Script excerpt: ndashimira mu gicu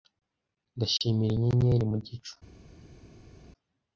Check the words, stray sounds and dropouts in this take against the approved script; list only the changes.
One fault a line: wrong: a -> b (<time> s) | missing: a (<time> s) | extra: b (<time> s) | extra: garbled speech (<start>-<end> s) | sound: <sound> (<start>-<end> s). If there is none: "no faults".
extra: inyenyeri (1.4 s)